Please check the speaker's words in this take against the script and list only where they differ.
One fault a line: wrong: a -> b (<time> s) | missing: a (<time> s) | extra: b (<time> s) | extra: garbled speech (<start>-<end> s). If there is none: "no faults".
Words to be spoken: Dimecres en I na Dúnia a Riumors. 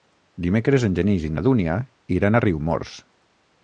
extra: Genís (1.0 s)
extra: iran (2.2 s)